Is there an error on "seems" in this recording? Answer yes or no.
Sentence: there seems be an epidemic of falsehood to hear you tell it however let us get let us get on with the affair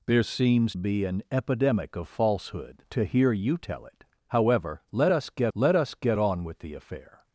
no